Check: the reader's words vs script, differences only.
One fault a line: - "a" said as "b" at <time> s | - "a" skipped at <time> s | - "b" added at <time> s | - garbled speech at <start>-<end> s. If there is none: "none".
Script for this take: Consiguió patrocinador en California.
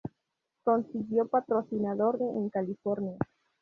none